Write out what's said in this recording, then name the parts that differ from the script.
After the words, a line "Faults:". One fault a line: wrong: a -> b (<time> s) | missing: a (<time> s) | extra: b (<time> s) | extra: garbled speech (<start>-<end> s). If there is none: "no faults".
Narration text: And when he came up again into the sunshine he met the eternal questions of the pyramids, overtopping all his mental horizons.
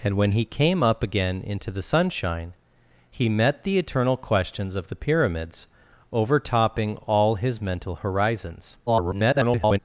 And when he came up again into the sunshine he met the eternal questions of the pyramids, overtopping all his mental horizons. [garbled]
Faults:
extra: garbled speech (8.9-9.8 s)